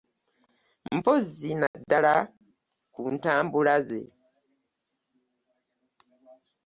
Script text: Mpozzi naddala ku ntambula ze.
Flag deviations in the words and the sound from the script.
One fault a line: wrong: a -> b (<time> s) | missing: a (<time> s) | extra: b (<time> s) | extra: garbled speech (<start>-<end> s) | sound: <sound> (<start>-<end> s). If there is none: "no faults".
sound: dropout (1.7-1.7 s)